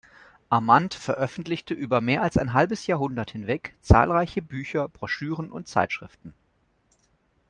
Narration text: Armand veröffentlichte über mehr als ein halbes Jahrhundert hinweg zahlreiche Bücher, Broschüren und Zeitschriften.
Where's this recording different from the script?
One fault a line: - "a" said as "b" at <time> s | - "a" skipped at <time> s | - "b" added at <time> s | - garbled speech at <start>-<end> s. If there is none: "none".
none